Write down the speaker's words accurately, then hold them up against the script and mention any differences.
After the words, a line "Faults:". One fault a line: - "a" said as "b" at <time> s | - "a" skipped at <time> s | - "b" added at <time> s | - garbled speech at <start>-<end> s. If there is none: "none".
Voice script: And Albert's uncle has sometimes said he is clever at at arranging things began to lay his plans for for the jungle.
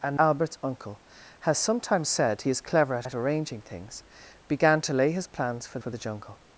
And Albert's uncle has sometimes said he is clever at at arranging things began to lay his plans for for the jungle.
Faults:
none